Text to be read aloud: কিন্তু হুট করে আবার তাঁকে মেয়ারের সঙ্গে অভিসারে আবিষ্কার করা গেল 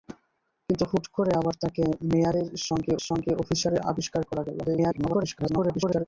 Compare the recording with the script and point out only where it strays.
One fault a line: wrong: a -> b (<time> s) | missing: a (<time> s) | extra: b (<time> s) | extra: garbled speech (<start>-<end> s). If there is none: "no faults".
extra: সঙ্গে (3.1 s)
extra: garbled speech (4.6-6.0 s)